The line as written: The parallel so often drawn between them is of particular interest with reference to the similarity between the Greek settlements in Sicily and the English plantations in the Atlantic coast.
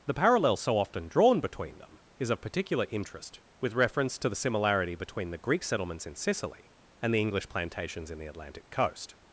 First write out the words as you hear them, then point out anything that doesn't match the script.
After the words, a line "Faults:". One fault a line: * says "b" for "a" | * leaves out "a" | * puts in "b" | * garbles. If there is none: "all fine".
The parallel so often drawn between them is of particular interest with reference to the similarity between the Greek settlements in Sicily and the English plantations in the Atlantic coast.
Faults:
all fine